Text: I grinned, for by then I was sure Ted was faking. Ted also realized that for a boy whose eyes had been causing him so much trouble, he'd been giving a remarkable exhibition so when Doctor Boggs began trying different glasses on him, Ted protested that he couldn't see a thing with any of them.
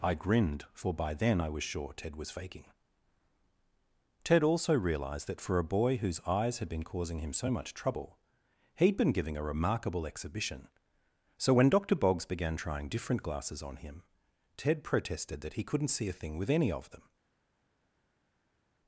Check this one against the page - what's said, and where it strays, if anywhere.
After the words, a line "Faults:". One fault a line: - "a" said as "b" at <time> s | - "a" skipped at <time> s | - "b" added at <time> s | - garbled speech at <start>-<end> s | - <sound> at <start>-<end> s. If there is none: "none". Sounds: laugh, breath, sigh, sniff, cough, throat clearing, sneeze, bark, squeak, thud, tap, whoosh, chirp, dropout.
I grinned, for by then I was sure Ted was faking. Ted also realized that for a boy whose eyes had been causing him so much trouble, he'd been giving a remarkable exhibition so when Doctor Boggs began trying different glasses on him, Ted protested that he couldn't see a thing with any of them.
Faults:
none